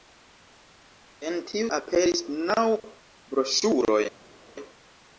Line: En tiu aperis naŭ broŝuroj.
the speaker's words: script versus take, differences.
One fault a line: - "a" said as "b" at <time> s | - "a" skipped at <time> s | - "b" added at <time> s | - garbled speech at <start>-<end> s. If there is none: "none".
none